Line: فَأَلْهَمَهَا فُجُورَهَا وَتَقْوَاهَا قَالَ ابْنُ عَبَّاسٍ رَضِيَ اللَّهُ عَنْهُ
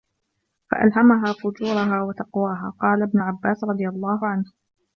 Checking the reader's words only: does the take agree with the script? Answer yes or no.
yes